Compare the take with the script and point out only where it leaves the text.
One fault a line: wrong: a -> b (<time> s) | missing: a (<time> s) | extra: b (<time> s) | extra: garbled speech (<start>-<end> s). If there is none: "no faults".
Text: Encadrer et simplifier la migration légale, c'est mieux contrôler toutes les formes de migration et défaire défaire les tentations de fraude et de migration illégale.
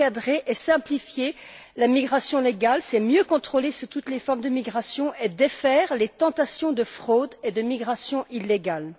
missing: défaire (6.0 s)